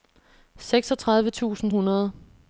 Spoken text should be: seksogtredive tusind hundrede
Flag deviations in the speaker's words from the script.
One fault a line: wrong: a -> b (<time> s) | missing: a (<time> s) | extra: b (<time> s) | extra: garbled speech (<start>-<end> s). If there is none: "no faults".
no faults